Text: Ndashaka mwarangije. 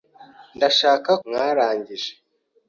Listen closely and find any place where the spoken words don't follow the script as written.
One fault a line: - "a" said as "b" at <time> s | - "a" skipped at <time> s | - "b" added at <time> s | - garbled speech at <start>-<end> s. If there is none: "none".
none